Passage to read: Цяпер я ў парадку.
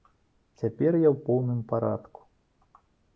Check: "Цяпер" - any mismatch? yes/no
no